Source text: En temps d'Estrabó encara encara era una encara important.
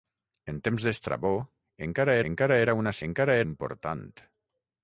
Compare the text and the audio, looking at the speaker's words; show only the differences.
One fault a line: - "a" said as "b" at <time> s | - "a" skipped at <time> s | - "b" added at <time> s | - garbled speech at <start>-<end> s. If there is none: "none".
none